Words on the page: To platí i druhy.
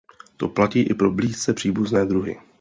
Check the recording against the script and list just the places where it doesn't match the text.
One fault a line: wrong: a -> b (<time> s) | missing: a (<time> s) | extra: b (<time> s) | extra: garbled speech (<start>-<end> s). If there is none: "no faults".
extra: pro blízce příbuzné (0.9 s)